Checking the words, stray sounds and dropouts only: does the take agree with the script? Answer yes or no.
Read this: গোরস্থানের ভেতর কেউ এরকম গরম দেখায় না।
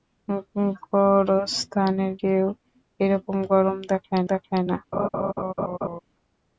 no